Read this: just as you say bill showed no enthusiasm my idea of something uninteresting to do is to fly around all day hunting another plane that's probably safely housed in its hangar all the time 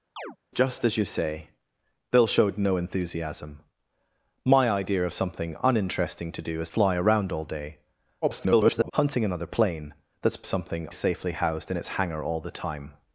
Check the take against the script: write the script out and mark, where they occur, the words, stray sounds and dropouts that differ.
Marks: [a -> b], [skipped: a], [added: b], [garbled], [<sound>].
[chirp] just as you say bill showed no enthusiasm my idea of something uninteresting to do is [skipped: to] fly around all day [garbled] hunting another plane that's [probably -> something] safely housed in its hangar all the time